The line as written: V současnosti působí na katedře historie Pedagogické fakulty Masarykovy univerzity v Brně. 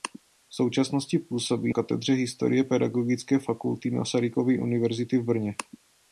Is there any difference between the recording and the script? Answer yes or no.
yes